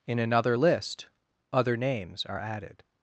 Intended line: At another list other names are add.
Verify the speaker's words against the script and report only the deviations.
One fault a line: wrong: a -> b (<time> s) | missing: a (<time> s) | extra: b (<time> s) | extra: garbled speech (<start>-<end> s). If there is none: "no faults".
wrong: At -> In (0.1 s)
wrong: add -> added (2.4 s)